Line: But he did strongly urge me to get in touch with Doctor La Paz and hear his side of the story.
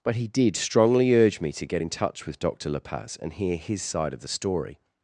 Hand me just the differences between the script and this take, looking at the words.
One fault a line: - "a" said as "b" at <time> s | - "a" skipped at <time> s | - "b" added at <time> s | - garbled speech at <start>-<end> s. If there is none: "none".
none